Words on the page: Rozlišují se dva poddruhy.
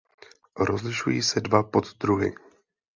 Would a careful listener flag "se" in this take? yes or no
no